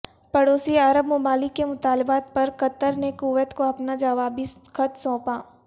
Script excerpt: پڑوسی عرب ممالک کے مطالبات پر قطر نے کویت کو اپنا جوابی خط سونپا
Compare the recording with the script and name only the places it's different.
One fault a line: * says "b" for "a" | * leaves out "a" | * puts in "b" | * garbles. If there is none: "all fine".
all fine